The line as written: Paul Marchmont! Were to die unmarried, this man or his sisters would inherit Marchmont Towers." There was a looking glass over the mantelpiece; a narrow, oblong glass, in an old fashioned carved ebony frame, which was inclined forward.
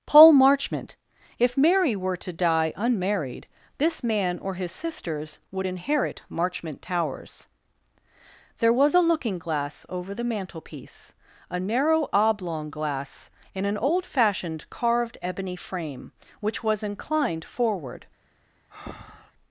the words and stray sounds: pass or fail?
fail